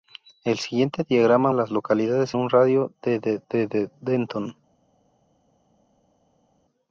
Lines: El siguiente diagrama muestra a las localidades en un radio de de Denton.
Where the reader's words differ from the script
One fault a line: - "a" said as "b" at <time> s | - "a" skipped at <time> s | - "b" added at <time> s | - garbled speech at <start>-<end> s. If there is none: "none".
- "muestra" skipped at 1.5 s
- "en" skipped at 2.4 s
- "de de" added at 3.5 s